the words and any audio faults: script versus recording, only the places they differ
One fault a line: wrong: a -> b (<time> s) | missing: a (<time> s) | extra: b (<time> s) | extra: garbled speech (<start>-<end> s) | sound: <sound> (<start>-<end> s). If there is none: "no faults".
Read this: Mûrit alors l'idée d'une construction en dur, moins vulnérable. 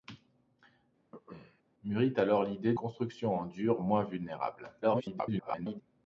sound: throat clearing (1.1-1.6 s)
missing: d'une (2.7 s)
extra: garbled speech (4.8-5.8 s)